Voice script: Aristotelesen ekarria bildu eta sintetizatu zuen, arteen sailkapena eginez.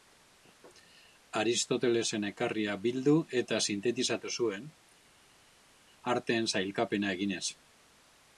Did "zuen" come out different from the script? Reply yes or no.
no